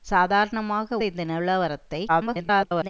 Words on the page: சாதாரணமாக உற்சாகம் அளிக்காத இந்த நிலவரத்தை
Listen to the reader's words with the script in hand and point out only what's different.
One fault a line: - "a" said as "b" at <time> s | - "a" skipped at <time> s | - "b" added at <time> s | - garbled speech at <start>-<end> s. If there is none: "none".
- "உற்சாகம் அளிக்காத" skipped at 1.0 s
- garbled speech at 2.1-2.9 s